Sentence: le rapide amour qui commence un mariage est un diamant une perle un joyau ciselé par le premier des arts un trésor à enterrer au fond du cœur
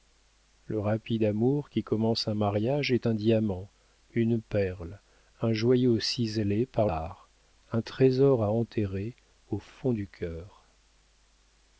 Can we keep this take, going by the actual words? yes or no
no